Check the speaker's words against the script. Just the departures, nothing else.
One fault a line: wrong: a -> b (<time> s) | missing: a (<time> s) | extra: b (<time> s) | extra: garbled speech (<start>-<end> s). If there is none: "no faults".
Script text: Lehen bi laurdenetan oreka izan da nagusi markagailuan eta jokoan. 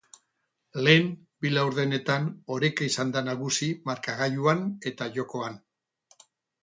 no faults